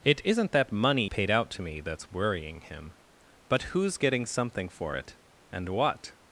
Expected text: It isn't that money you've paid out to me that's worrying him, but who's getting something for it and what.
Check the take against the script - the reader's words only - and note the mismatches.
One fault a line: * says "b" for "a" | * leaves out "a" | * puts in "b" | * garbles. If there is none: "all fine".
* leaves out "you've"